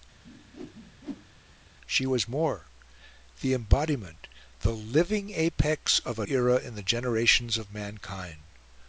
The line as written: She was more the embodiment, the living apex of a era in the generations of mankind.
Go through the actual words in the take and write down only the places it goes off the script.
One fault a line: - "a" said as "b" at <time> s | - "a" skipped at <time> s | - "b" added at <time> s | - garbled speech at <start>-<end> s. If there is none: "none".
none